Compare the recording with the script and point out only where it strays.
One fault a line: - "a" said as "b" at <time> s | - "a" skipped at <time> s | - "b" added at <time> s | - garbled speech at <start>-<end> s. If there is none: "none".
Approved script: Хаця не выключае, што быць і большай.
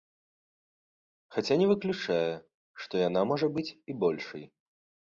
- "яна можа" added at 3.1 s